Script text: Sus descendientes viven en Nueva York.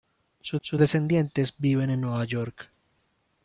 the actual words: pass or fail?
fail